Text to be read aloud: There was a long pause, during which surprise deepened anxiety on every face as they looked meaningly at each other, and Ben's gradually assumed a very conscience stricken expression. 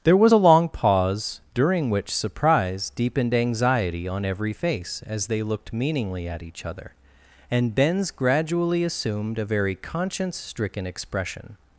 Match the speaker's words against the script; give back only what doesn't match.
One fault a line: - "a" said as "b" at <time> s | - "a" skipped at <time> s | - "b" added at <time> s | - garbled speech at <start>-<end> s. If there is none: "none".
none